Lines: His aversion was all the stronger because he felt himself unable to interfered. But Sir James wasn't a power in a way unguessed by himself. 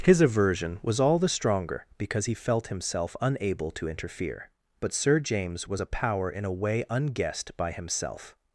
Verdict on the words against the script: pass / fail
fail